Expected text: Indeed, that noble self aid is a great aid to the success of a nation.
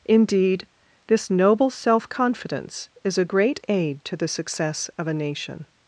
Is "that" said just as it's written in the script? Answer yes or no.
no